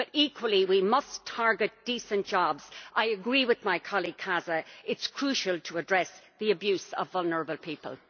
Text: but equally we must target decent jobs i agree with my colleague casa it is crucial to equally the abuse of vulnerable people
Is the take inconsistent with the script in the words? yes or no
yes